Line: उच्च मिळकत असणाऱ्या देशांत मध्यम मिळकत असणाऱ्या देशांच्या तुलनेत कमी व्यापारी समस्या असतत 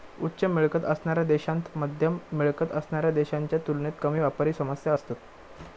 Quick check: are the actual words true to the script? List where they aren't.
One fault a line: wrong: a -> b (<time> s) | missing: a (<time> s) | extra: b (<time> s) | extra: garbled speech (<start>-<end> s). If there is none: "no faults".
no faults